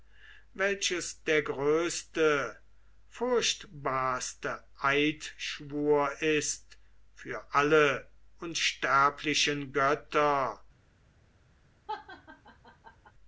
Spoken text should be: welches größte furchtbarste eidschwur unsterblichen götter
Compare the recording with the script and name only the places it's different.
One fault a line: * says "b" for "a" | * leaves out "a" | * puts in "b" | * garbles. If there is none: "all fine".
* puts in "der"
* puts in "ist für alle"